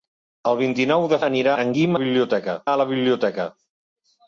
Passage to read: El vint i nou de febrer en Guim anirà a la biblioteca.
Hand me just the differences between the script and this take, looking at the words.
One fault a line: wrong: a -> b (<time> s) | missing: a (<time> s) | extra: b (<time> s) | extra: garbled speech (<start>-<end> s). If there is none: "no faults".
wrong: febrer -> anirà (1.3 s)
wrong: anirà -> biblioteca (2.0 s)